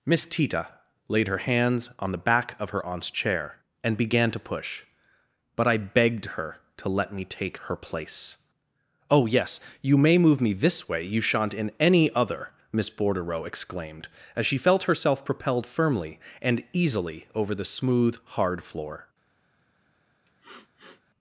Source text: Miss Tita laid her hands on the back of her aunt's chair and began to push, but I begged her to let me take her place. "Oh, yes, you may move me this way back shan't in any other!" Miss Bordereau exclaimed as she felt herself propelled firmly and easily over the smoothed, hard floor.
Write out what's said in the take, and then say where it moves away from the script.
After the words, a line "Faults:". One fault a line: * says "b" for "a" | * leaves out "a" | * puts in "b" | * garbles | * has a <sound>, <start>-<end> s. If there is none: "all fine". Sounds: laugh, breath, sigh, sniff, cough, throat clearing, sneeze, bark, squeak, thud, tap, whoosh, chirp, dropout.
Miss Tita laid her hands on the back of her aunt's chair and began to push, but I begged her to let me take her place. "Oh, yes, you may move me this way you shan't in any other!" Miss Bordereau exclaimed as she felt herself propelled firmly and easily over the smooth, hard floor.
Faults:
* says "you" for "back"
* says "smooth" for "smoothed"
* has a sniff, 20.3-21.0 s